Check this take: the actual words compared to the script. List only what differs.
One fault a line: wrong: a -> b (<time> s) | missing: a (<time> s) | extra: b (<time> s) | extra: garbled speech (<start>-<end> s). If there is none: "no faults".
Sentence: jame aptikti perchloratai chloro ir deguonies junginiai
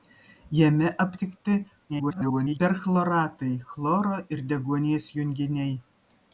extra: garbled speech (1.9-2.6 s)